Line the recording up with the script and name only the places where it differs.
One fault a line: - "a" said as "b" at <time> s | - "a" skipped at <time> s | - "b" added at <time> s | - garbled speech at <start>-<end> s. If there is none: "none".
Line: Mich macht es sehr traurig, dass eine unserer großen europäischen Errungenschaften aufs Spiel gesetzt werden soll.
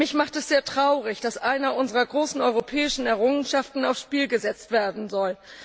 none